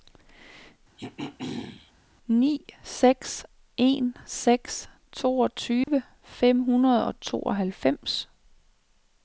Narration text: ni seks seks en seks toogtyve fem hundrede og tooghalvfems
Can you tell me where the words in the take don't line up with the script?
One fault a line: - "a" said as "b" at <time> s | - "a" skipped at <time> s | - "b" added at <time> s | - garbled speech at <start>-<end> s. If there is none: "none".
- "seks" skipped at 3.5 s